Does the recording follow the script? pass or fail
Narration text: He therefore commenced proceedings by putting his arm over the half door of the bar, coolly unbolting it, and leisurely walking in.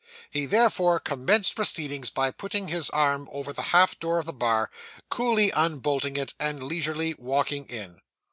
pass